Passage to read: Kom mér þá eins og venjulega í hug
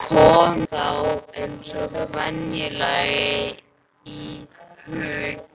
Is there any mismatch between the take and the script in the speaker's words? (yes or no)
yes